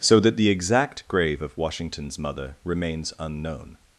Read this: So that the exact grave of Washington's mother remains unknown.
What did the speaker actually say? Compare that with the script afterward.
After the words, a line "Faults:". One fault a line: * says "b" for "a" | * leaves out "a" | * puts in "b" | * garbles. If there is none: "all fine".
So that the exact grave of Washington's mother remains unknown.
Faults:
all fine